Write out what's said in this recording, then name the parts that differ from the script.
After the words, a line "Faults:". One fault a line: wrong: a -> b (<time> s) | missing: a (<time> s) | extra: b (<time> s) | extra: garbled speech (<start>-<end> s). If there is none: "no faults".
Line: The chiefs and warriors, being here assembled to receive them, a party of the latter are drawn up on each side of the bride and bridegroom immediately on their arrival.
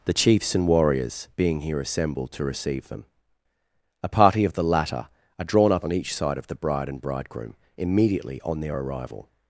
The chiefs and warriors, being here assembled to receive them, a party of the latter are drawn up on each side of the bride and bridegroom immediately on their arrival.
Faults:
no faults